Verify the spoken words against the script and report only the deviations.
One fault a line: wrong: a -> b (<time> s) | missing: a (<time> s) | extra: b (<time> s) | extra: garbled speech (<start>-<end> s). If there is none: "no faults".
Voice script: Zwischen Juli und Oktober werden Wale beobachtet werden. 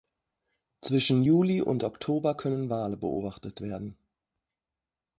wrong: werden -> können (2.4 s)